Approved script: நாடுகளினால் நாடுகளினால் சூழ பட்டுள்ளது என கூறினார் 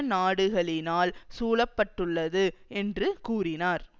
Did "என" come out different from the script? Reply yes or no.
yes